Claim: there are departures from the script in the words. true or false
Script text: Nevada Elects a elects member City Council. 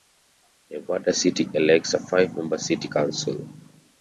true